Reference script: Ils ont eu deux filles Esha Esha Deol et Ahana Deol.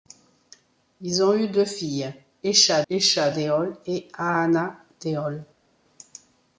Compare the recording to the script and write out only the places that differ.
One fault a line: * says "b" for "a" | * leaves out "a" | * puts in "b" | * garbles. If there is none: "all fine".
all fine